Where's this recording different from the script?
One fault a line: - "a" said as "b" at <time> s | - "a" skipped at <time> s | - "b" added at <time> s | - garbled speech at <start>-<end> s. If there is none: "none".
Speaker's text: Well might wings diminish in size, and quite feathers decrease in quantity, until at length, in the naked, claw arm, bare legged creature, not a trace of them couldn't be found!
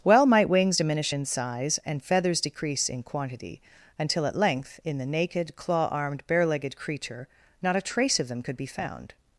- "quite" skipped at 2.0 s
- "arm" said as "armed" at 5.9 s
- "couldn't" said as "could" at 8.4 s